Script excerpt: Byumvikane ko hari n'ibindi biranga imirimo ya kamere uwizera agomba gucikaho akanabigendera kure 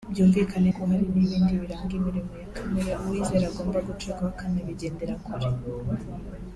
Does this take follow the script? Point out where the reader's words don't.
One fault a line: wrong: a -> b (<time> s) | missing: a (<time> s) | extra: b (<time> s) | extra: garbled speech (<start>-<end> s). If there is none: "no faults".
no faults